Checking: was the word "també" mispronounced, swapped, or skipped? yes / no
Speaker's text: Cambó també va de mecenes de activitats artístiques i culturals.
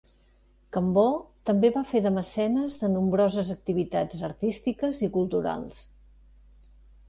no